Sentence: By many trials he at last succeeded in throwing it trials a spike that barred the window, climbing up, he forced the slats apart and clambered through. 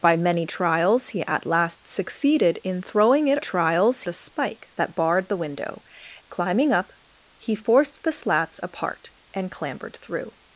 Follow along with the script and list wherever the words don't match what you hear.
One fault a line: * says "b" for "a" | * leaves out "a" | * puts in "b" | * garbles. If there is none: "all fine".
all fine